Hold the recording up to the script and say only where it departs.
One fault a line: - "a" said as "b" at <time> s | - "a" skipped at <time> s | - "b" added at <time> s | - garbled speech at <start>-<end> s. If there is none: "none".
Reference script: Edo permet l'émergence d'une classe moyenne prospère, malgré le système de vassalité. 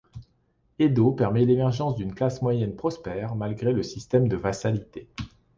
none